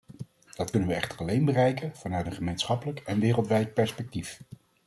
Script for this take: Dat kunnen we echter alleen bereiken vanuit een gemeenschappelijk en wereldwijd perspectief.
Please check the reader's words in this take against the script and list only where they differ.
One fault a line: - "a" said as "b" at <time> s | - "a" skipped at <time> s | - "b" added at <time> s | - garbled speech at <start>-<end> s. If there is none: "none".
none